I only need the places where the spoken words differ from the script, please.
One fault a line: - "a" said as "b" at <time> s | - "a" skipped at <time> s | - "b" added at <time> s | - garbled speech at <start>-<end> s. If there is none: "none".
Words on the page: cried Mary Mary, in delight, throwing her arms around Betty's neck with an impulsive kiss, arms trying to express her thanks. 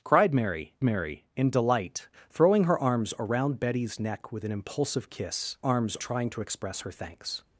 none